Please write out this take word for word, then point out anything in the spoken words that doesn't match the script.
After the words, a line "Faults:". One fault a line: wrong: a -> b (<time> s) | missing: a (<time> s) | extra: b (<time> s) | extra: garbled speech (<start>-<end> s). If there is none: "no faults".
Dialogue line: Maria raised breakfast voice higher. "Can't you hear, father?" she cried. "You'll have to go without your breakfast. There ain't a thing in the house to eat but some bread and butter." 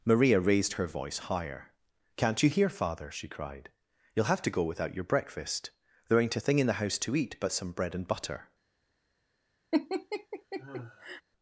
Maria raised her voice higher. "Can't you hear, father?" she cried. "You'll have to go without your breakfast. There ain't a thing in the house to eat but some bread and butter."
Faults:
wrong: breakfast -> her (0.7 s)